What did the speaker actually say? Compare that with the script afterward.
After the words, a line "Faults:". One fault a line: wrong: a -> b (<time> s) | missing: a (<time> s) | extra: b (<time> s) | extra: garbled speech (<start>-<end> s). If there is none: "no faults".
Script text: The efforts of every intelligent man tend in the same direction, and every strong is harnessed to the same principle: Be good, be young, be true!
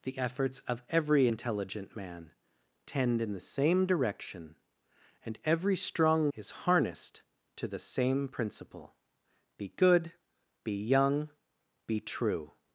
The efforts of every intelligent man tend in the same direction, and every strong is harnessed to the same principle: Be good, be young, be true!
Faults:
no faults